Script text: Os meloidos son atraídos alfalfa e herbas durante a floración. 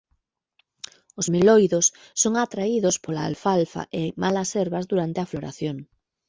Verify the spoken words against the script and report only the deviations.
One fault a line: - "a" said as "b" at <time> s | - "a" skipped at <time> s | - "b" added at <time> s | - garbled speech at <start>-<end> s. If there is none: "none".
- "pola" added at 3.0 s
- "malas" added at 4.2 s